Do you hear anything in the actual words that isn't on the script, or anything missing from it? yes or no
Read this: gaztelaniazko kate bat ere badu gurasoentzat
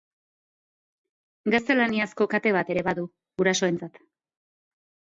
no